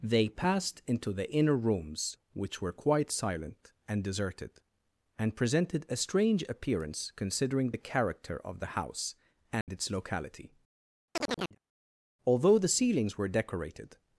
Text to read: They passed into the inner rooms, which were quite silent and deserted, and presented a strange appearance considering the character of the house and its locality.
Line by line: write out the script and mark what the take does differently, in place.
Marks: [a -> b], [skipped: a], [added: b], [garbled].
They passed into the inner rooms, which were quite silent and deserted, and presented a strange appearance considering the character of the house and its locality. [added: Although the ceilings were decorated]